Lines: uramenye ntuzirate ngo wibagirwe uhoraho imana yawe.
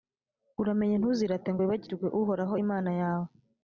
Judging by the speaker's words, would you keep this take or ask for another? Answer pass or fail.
pass